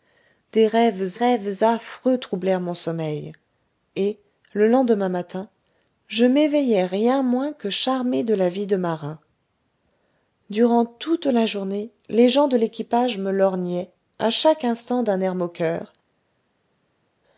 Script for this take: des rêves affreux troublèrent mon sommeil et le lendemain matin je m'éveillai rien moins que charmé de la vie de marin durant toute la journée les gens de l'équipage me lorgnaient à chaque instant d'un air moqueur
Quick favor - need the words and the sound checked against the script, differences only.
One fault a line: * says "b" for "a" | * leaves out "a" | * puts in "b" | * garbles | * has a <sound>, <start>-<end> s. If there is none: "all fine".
* puts in "rêves"